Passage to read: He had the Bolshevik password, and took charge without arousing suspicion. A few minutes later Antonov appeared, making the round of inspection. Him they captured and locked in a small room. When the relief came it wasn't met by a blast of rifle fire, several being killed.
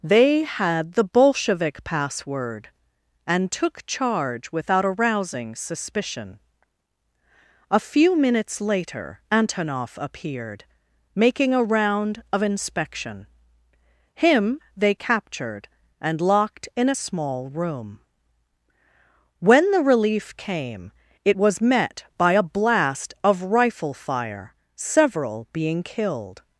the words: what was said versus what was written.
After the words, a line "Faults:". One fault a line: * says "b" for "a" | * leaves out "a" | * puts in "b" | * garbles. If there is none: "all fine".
They had the Bolshevik password, and took charge without arousing suspicion. A few minutes later Antonov appeared, making a round of inspection. Him they captured and locked in a small room. When the relief came it was met by a blast of rifle fire, several being killed.
Faults:
* says "They" for "He"
* says "a" for "the"
* says "was" for "wasn't"